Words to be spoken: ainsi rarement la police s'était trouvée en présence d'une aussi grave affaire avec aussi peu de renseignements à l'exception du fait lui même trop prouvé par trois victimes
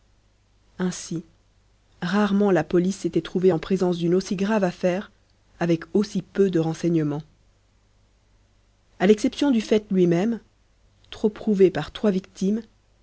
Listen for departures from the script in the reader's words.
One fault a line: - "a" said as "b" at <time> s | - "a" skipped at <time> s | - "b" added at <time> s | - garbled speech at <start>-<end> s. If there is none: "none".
none